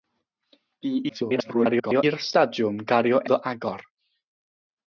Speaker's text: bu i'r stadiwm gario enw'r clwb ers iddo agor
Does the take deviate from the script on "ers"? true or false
true